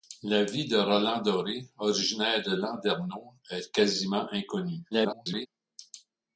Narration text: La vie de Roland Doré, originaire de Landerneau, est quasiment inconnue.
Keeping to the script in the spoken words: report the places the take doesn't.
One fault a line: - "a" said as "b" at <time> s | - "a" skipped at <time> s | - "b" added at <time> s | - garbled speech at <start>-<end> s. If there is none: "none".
- garbled speech at 4.9-5.5 s